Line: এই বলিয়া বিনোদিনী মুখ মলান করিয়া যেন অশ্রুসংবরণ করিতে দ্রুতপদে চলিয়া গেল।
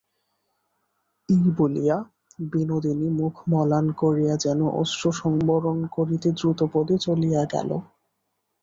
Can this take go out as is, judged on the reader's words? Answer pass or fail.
pass